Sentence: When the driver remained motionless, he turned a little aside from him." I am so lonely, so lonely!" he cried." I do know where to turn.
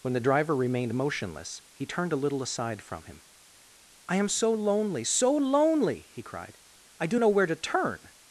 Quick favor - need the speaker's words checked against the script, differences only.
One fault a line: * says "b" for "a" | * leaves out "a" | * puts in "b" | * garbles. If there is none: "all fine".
all fine